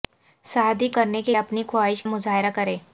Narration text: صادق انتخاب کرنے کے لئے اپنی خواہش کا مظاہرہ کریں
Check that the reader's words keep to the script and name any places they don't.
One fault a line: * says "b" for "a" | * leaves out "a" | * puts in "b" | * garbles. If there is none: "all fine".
* leaves out "انتخاب"
* leaves out "لئے"
* leaves out "کا"